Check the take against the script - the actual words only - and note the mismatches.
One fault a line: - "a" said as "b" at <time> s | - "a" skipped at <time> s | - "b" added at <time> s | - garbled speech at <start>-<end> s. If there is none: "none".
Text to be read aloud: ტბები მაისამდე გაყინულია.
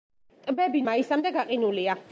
none